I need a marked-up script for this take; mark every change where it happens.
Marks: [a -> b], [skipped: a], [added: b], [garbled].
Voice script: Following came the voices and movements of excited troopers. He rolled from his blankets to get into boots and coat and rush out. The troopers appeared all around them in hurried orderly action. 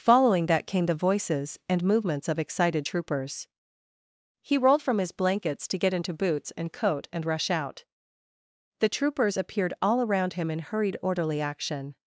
Following [added: that] came the voices and movements of excited troopers. He rolled from his blankets to get into boots and coat and rush out. The troopers appeared all around [them -> him] in hurried orderly action.